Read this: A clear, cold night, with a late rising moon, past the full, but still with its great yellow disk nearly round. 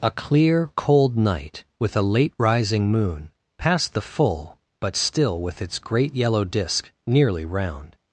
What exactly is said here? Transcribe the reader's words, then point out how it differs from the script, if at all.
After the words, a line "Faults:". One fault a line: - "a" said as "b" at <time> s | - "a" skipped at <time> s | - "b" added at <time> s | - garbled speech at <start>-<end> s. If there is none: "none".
A clear, cold night, with a late rising moon, past the full, but still with its great yellow disk nearly round.
Faults:
none